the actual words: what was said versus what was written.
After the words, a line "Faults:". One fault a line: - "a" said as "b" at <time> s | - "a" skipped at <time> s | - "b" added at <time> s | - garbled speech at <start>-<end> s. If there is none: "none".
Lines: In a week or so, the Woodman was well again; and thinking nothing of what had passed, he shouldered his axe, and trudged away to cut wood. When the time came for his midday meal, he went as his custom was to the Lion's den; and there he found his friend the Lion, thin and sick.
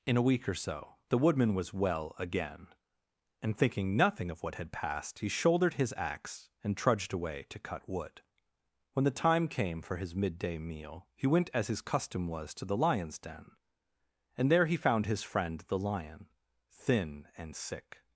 In a week or so, the Woodman was well again; and thinking nothing of what had passed, he shouldered his axe, and trudged away to cut wood. When the time came for his midday meal, he went as his custom was to the Lion's den; and there he found his friend the Lion, thin and sick.
Faults:
none